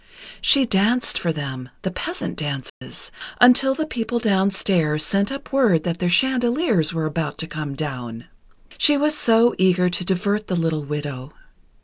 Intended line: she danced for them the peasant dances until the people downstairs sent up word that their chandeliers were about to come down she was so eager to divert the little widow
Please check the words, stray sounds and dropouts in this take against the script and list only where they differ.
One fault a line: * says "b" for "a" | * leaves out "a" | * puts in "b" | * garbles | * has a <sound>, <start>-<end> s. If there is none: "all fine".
* has a dropout, 2.7-2.8 s